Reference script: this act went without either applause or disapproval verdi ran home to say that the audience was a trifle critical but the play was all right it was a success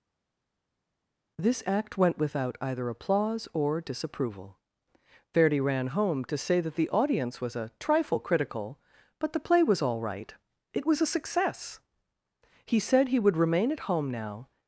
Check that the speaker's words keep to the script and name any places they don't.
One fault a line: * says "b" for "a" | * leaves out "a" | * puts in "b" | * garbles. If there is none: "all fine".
* puts in "he said he would remain at home now"